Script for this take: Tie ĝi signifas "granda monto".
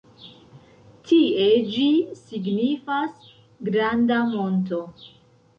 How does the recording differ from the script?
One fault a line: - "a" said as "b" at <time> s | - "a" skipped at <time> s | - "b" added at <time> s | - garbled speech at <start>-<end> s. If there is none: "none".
none